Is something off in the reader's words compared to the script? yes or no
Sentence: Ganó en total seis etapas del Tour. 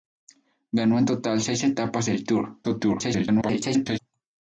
yes